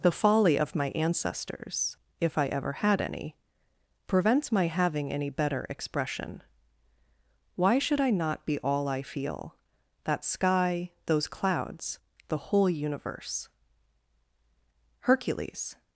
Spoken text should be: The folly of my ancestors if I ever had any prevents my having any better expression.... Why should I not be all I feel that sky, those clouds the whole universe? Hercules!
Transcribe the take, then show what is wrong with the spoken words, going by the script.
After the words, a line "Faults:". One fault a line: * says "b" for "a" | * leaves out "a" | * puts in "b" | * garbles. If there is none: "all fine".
The folly of my ancestors if I ever had any prevents my having any better expression.... Why should I not be all I feel that sky, those clouds the whole universe? Hercules!
Faults:
all fine